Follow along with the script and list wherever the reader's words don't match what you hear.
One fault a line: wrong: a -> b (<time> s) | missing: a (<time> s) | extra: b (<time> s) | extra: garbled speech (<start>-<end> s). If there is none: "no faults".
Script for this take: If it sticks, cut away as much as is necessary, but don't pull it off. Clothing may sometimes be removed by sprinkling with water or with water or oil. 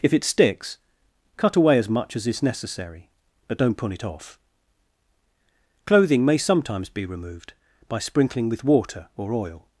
missing: with water or (9.3 s)